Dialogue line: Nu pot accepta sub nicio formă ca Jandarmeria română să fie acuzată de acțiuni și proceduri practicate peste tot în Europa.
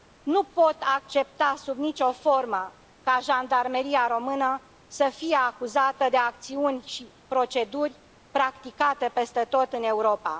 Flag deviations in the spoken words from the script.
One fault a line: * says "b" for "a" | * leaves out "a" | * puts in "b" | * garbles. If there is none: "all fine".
all fine